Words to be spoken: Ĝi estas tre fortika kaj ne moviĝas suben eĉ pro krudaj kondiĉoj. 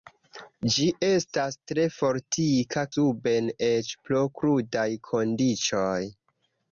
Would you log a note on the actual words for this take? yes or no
yes